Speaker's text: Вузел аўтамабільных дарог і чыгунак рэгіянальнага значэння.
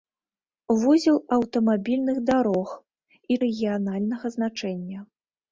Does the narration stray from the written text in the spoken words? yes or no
yes